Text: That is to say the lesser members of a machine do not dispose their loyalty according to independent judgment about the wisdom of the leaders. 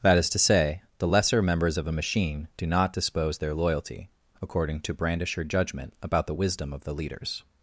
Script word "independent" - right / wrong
wrong